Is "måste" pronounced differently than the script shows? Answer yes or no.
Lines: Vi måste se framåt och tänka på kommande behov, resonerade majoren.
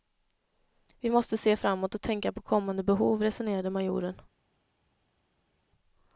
no